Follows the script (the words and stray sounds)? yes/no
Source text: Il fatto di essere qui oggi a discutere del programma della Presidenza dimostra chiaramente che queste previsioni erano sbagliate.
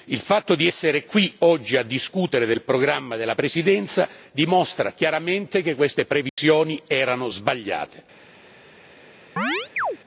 no